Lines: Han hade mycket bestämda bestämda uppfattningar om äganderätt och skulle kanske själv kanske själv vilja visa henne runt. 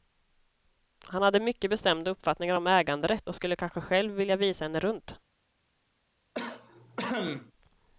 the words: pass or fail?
fail